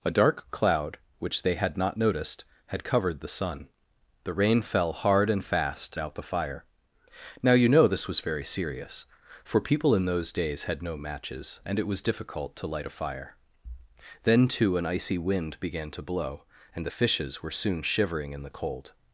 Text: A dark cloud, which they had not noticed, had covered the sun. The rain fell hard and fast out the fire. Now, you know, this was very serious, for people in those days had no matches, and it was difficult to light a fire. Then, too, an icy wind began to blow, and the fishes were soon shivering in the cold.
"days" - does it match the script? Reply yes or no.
yes